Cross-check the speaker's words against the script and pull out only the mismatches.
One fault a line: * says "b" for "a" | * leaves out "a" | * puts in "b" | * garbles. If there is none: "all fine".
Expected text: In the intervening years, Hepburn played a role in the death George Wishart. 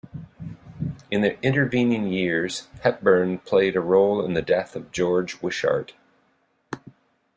* puts in "of"